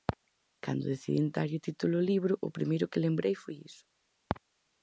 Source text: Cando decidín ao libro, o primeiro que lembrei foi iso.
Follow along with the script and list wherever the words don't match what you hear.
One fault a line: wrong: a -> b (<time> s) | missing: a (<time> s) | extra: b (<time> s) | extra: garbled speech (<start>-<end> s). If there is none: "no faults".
extra: darlle título (1.4 s)